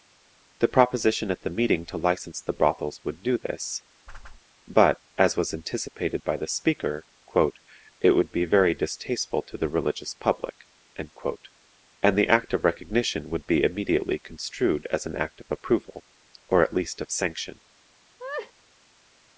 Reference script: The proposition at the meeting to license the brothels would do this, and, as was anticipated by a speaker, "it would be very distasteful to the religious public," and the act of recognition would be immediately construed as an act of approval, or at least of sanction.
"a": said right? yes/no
no